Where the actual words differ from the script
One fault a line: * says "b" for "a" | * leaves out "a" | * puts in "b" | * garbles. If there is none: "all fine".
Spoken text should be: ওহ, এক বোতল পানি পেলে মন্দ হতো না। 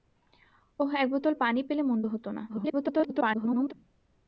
* garbles